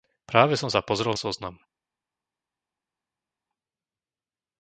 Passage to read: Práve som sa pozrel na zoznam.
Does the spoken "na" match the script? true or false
false